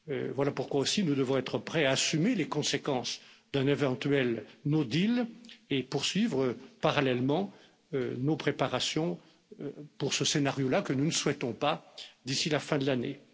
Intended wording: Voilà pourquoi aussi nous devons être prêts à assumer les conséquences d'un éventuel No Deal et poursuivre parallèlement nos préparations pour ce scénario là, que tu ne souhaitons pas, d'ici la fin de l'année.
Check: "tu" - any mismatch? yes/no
yes